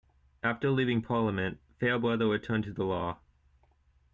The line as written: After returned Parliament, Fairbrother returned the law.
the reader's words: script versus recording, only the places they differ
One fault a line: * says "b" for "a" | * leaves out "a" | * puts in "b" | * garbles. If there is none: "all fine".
* says "leaving" for "returned"
* puts in "to"